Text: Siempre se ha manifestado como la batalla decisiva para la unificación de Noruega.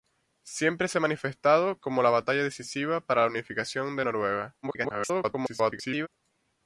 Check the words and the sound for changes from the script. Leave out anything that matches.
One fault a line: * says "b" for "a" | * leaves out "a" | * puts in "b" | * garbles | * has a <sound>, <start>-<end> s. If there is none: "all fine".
* garbles